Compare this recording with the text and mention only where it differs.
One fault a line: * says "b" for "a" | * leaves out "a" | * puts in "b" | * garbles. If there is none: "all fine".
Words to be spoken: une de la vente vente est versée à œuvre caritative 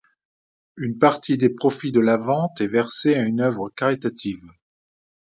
* puts in "partie des profits"
* leaves out "vente"
* puts in "une"